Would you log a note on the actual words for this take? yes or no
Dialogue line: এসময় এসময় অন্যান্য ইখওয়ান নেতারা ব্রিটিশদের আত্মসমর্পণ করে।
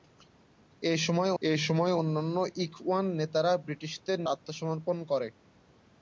no